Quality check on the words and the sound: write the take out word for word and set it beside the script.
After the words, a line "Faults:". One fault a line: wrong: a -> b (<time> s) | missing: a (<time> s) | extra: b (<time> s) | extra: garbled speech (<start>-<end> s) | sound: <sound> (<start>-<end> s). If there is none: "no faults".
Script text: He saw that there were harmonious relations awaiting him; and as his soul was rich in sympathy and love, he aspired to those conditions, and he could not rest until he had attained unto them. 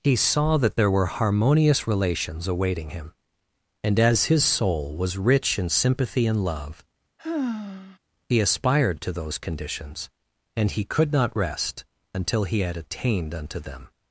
He saw that there were harmonious relations awaiting him; and as his soul was rich in sympathy and love, he aspired to those conditions, and he could not rest until he had attained unto them.
Faults:
sound: sigh (7.2-8.0 s)